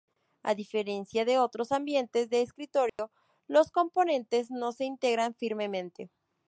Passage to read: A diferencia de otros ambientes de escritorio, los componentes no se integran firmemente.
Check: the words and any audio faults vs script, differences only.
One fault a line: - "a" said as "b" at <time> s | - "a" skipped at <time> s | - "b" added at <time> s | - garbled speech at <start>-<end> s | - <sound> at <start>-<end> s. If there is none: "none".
- dropout at 2.9-3.0 s